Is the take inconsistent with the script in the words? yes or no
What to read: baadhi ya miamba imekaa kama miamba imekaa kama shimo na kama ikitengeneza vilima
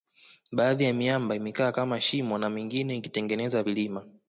yes